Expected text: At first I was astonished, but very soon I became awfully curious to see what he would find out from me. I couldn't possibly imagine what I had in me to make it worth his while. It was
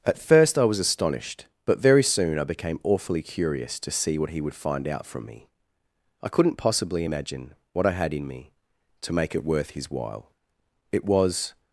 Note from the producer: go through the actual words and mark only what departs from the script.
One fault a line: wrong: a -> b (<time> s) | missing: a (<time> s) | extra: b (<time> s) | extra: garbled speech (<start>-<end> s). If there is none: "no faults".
no faults